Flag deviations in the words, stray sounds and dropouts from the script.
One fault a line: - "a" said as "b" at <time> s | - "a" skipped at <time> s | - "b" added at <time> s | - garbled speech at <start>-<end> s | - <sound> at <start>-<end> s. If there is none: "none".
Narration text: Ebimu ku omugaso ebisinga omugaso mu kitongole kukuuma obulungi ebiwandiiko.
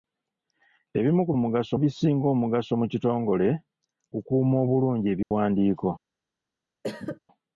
- dropout at 5.2-5.3 s
- cough at 6.8-7.2 s